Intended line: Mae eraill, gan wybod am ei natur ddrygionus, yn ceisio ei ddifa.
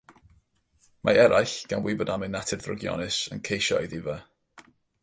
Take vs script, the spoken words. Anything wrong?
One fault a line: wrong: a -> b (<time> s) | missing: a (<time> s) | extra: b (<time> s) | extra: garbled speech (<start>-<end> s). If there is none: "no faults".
no faults